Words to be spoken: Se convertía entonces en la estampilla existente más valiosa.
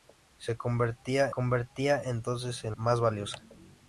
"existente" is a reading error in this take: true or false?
true